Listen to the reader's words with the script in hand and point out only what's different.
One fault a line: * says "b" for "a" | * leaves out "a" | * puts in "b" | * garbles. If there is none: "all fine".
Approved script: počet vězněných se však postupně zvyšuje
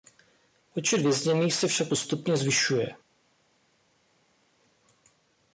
all fine